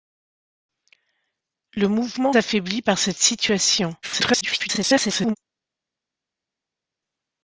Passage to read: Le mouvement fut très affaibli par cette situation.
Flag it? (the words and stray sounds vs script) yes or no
yes